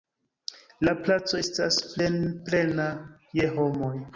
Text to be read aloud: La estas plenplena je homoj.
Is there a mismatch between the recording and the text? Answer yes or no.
yes